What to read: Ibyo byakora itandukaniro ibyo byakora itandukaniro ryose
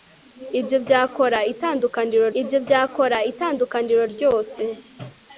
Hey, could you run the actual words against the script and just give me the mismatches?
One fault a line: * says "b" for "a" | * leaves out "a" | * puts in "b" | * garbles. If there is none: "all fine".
all fine